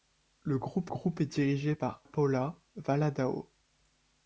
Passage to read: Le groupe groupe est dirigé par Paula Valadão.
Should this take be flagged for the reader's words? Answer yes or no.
no